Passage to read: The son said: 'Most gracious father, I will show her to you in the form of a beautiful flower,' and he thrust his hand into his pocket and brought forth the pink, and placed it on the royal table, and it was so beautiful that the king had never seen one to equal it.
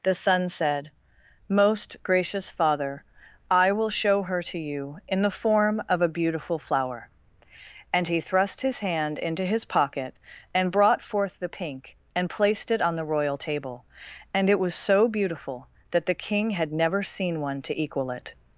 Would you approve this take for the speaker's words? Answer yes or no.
yes